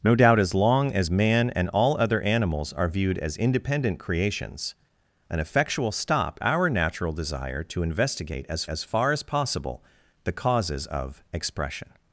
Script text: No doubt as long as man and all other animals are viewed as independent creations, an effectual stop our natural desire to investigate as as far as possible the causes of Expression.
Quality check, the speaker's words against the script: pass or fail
pass